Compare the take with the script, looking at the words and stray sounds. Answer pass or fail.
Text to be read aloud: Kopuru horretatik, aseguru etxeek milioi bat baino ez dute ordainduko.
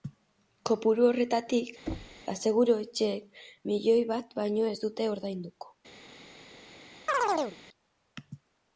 fail